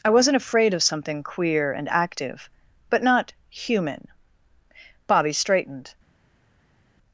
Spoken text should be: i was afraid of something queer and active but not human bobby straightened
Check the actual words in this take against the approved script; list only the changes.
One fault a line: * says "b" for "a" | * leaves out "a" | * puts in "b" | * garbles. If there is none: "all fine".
* says "wasn't" for "was"